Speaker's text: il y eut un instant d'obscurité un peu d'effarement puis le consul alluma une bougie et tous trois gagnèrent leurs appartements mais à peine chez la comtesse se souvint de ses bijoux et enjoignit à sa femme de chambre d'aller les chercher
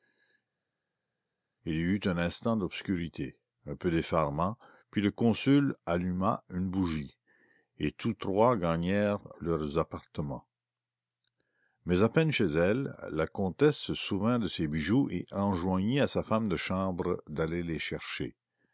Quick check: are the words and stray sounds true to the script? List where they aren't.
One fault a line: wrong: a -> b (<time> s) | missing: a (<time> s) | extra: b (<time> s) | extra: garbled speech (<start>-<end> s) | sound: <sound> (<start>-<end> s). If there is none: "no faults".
extra: elle (12.5 s)